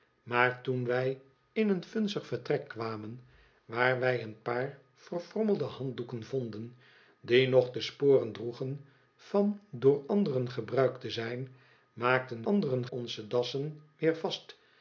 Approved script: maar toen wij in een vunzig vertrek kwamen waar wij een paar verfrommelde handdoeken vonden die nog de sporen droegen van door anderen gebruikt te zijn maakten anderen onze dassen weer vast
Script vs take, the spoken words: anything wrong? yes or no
no